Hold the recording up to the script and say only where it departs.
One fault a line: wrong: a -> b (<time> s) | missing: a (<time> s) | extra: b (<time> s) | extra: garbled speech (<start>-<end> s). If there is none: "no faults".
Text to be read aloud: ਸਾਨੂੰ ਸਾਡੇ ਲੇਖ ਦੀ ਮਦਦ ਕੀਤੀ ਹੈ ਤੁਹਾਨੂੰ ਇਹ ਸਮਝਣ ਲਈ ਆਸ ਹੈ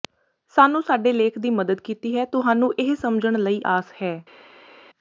no faults